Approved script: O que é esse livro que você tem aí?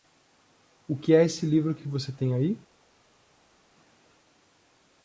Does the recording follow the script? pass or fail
fail